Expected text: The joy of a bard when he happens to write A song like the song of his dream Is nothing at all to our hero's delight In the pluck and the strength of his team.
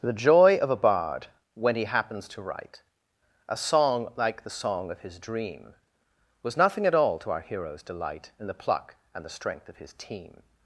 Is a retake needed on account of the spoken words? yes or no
yes